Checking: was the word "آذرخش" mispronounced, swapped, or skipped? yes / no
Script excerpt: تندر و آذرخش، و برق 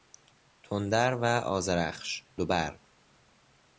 no